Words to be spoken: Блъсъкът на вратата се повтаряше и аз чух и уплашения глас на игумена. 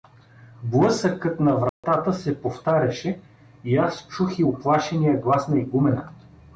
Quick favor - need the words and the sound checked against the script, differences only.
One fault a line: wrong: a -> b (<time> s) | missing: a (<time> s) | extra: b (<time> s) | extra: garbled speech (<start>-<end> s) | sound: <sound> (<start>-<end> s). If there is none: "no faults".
sound: dropout (1.7-1.8 s)